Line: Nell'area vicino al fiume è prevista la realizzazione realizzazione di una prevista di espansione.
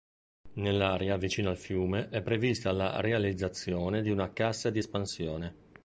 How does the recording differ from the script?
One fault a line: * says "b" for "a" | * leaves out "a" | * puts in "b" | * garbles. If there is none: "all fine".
* leaves out "realizzazione"
* says "cassa" for "prevista"